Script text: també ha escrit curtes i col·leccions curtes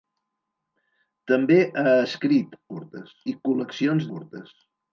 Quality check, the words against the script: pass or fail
pass